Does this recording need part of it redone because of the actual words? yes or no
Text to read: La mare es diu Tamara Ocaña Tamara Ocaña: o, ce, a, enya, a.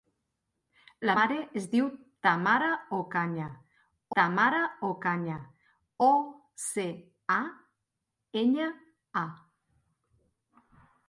no